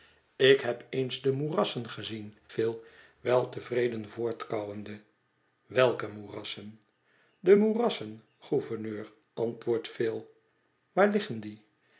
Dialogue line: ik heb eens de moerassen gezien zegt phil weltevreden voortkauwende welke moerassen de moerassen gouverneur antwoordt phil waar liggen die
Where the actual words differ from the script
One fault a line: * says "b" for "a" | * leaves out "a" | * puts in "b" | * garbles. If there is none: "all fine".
* leaves out "zegt"